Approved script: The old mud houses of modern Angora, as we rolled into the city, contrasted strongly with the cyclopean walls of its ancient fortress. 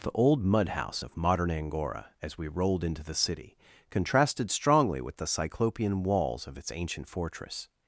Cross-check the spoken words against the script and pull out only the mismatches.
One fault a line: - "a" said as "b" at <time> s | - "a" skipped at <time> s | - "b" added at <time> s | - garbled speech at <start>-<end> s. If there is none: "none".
- "houses" said as "house" at 0.7 s